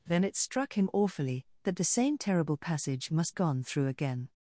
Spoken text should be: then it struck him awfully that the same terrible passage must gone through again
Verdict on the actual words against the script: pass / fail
pass